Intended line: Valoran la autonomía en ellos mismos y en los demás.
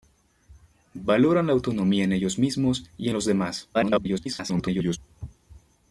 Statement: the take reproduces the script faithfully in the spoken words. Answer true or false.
false